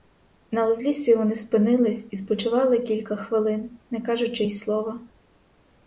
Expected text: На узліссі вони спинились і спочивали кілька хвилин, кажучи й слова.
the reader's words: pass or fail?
fail